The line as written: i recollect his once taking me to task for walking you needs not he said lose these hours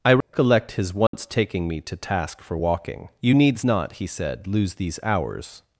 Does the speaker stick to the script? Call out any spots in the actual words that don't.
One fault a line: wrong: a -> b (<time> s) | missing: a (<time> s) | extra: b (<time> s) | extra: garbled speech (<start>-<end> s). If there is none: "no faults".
no faults